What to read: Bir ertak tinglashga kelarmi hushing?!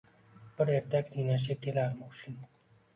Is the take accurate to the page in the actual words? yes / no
yes